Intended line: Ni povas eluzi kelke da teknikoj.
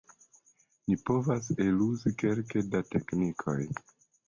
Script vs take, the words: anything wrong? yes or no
no